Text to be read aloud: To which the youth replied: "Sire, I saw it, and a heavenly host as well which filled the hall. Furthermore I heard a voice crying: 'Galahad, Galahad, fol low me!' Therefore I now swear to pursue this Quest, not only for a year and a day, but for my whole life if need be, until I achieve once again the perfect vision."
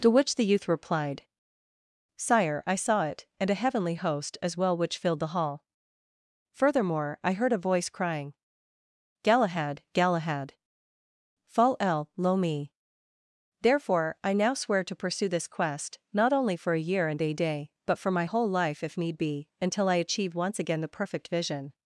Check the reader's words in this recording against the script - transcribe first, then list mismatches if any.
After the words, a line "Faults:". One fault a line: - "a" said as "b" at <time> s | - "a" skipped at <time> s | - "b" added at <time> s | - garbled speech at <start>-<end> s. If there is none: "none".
To which the youth replied: "Sire, I saw it, and a heavenly host as well which filled the hall. Furthermore I heard a voice crying: 'Galahad, Galahad, fall el lo me!' Therefore I now swear to pursue this Quest, not only for a year and a day, but for my whole life if need be, until I achieve once again the perfect vision."
Faults:
- "fol low" said as "fall el lo" at 11.5 s